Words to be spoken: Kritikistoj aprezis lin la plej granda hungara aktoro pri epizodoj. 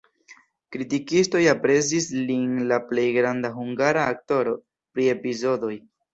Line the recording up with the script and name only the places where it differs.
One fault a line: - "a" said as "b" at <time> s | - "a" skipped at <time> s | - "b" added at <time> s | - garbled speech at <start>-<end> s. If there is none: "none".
none